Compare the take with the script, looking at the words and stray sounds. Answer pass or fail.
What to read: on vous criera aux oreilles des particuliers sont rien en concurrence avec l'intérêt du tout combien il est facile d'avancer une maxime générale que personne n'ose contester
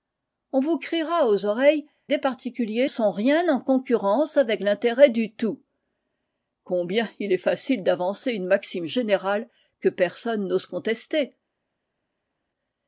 pass